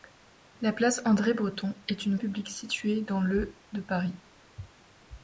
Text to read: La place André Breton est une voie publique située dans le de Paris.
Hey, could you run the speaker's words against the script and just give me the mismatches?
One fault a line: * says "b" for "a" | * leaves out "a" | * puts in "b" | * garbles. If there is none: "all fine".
* leaves out "voie"